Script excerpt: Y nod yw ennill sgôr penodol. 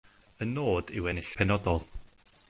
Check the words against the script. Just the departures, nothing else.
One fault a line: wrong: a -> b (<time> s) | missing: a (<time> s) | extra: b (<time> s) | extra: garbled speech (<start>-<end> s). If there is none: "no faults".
missing: sgôr (1.3 s)